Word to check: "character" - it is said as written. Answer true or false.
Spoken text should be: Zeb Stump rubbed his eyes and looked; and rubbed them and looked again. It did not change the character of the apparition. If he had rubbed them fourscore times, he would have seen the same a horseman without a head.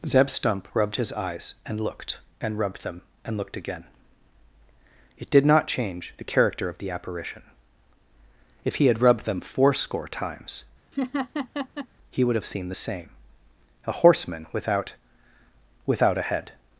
true